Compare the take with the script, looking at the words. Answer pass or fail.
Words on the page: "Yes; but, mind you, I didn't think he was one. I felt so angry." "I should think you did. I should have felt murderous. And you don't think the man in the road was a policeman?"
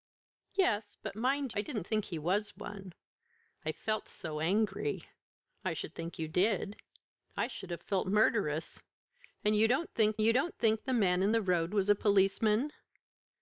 fail